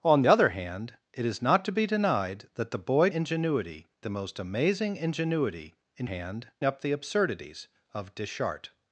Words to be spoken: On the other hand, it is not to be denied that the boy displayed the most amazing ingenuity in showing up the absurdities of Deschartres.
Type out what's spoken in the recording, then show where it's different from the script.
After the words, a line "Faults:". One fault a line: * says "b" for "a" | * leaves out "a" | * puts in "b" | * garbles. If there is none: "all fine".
On other hand, it is not to be denied that the boy ingenuity the most amazing ingenuity in hand up the absurdities of Deschartres.
Faults:
* leaves out "the"
* says "ingenuity" for "displayed"
* says "hand" for "showing"